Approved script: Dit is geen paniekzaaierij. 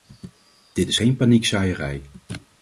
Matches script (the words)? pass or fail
pass